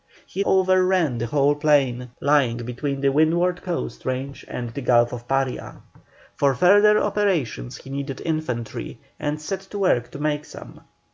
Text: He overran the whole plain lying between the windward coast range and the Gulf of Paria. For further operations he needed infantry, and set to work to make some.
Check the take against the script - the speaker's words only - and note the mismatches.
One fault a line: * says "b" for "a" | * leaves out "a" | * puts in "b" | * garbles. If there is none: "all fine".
all fine